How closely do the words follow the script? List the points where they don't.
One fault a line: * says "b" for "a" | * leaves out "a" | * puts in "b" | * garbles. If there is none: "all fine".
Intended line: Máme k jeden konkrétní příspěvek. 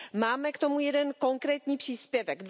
* puts in "tomu"